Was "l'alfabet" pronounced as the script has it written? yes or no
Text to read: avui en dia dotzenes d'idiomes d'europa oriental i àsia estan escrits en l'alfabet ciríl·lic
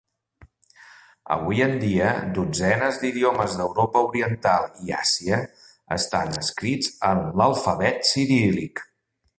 yes